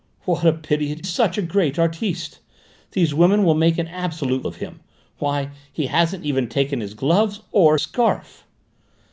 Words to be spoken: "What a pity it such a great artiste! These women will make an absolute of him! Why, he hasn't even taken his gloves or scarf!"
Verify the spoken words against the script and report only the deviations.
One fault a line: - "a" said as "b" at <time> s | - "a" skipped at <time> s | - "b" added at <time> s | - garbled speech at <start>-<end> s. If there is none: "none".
none